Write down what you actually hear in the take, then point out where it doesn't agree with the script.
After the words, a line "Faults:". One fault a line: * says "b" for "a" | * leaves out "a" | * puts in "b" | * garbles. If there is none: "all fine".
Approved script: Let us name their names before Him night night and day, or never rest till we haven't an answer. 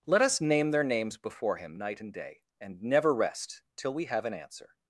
Let us name their names before Him night and day, and never rest till we have an answer.
Faults:
* leaves out "night"
* says "and" for "or"
* says "have" for "haven't"